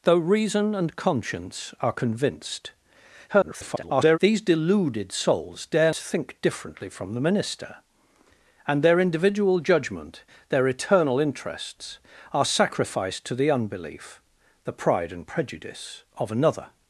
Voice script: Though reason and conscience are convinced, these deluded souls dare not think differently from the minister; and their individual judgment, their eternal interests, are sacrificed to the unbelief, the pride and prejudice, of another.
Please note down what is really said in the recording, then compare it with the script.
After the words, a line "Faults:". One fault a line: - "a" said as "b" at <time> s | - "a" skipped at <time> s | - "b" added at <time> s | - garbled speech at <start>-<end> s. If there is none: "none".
Though reason and conscience are convinced, [garbled] these deluded souls dare think differently from the minister; and their individual judgment, their eternal interests, are sacrificed to the unbelief, the pride and prejudice, of another.
Faults:
- garbled speech at 3.3-4.2 s
- "not" skipped at 5.9 s